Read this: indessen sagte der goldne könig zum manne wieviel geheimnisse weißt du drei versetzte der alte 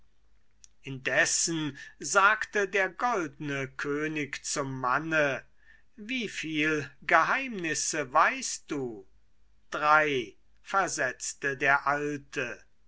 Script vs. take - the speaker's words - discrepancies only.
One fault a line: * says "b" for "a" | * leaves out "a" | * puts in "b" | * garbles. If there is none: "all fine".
all fine